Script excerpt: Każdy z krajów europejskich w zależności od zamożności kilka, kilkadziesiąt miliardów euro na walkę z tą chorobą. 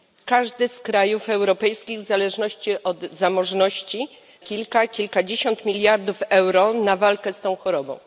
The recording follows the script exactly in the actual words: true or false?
true